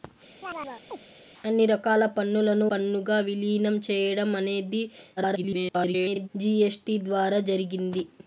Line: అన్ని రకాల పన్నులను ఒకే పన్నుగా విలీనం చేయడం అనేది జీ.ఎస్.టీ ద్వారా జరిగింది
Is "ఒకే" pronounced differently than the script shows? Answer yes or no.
yes